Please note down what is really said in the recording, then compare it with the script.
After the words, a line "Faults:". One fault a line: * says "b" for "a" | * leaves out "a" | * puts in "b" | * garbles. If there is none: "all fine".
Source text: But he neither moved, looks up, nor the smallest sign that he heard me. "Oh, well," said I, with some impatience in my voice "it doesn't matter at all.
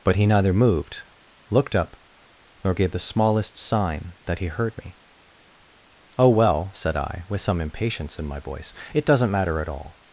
But he neither moved, looked up, nor gave the smallest sign that he heard me. "Oh, well," said I, with some impatience in my voice "it doesn't matter at all.
Faults:
* says "looked" for "looks"
* puts in "gave"